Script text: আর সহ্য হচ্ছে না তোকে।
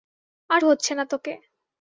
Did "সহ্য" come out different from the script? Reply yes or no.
yes